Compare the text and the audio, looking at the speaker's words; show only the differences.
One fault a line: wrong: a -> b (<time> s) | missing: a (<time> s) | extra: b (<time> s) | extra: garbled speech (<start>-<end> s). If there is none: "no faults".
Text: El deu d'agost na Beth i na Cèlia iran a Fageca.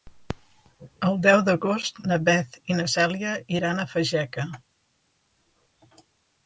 no faults